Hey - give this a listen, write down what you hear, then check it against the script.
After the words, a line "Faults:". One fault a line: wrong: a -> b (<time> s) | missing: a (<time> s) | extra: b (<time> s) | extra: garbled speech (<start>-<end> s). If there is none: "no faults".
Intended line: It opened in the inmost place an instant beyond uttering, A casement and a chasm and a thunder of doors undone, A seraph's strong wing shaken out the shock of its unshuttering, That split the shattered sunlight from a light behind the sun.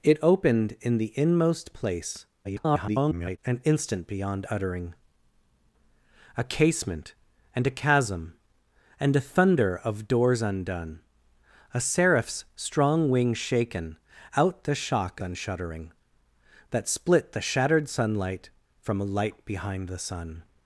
It opened in the inmost place [garbled] an instant beyond uttering, A casement and a chasm and a thunder of doors undone, A seraph's strong wing shaken out the shock unshuttering, That split the shattered sunlight from a light behind the sun.
Faults:
extra: garbled speech (2.4-3.4 s)
missing: of its (15.2 s)